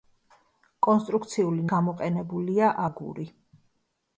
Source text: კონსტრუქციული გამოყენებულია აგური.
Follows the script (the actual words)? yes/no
yes